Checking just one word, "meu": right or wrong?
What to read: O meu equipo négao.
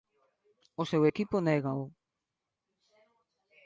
wrong